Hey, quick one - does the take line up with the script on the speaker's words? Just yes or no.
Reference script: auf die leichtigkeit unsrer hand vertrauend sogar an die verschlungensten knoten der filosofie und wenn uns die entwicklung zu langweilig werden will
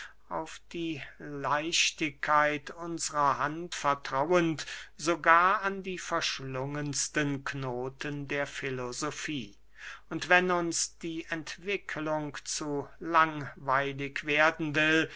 yes